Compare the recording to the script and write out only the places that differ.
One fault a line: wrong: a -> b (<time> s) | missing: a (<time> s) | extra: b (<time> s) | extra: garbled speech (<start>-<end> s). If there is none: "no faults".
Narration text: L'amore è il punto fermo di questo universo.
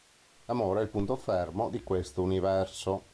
no faults